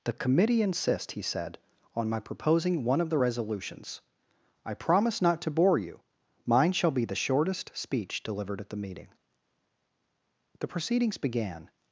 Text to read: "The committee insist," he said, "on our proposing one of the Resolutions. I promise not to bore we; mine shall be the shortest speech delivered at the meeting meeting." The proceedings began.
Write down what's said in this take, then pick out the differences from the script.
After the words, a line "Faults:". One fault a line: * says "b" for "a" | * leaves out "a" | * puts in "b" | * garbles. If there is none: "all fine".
"The committee insist," he said, "on my proposing one of the Resolutions. I promise not to bore you; mine shall be the shortest speech delivered at the meeting." The proceedings began.
Faults:
* says "my" for "our"
* says "you" for "we"
* leaves out "meeting"